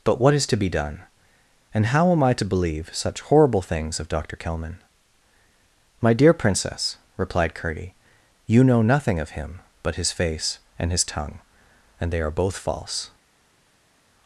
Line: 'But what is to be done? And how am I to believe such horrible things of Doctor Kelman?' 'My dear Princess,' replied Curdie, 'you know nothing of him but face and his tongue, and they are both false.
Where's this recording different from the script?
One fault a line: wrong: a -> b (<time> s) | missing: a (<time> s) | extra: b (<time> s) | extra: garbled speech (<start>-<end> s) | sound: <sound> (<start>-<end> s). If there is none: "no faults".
extra: his (10.0 s)